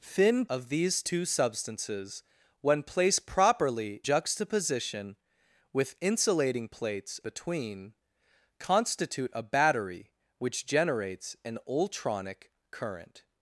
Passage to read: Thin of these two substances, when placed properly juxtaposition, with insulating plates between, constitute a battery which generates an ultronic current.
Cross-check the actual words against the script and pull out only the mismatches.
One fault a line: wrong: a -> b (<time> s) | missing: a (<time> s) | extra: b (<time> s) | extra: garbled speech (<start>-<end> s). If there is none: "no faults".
no faults